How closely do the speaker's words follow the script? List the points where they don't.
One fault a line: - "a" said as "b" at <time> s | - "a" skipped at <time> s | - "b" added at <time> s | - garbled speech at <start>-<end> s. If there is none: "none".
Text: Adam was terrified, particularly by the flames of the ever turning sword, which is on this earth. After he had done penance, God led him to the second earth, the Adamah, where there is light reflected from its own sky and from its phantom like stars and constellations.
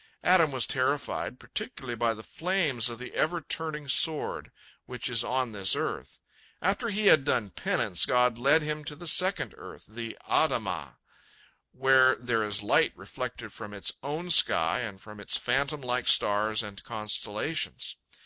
none